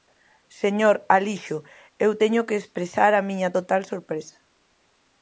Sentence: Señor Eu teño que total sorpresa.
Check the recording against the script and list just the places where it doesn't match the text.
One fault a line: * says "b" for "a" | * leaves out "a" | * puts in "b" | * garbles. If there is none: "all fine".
* puts in "Alixo"
* puts in "expresar a miña"